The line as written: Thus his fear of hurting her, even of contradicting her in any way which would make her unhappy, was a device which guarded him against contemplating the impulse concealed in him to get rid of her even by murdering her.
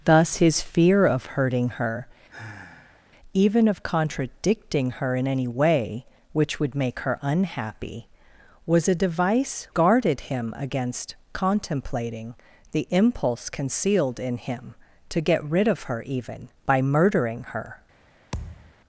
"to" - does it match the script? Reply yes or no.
yes